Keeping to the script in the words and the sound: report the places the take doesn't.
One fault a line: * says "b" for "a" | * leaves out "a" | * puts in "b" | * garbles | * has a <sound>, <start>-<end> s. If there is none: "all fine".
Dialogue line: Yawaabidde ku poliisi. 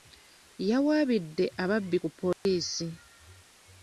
* puts in "ababbi"
* has a dropout, 2.3-2.5 s